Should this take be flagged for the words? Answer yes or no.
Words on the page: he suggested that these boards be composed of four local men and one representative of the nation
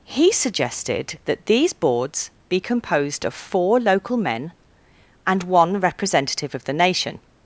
no